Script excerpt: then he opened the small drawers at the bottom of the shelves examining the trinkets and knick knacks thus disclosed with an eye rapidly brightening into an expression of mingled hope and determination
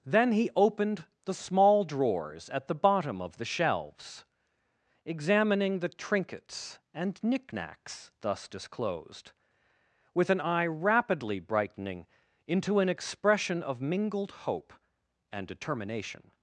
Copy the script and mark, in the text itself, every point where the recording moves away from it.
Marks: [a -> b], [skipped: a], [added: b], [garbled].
then he opened the small drawers at the bottom of the shelves examining the trinkets and knick knacks thus disclosed with an eye rapidly brightening into an expression of mingled hope and determination